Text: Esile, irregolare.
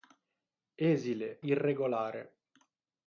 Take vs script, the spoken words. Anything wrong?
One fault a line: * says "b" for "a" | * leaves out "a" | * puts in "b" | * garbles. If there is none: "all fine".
all fine